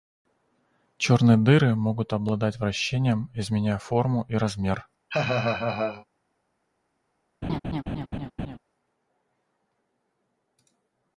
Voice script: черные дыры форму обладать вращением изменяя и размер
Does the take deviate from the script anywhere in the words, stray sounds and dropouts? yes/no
yes